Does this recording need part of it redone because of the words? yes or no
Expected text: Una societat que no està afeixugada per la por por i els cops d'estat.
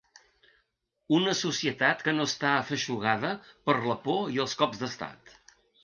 yes